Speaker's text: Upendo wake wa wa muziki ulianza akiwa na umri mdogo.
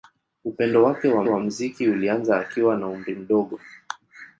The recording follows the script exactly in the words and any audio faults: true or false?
true